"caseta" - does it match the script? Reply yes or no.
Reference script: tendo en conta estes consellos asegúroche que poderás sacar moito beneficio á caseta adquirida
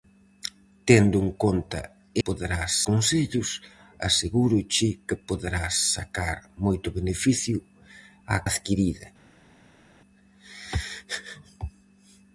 no